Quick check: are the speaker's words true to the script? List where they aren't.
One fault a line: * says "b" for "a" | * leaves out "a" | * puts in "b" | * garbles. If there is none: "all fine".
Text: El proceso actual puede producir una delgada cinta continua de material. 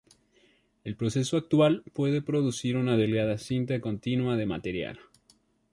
all fine